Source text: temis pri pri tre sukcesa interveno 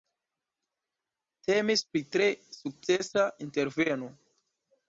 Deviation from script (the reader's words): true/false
true